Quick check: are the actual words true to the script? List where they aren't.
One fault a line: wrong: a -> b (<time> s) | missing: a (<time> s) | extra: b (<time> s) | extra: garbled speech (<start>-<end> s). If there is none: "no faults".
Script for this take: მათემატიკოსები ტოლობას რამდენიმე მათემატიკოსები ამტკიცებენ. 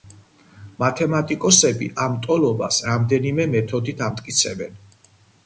extra: ამ (2.0 s)
wrong: მათემატიკოსები -> მეთოდით (3.6 s)